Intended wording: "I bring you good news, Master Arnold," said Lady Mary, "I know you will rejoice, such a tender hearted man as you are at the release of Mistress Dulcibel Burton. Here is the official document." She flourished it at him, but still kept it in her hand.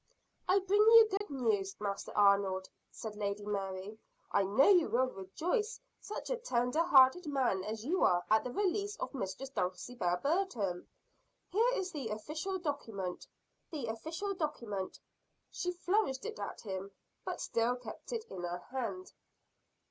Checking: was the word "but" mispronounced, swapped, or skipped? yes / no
no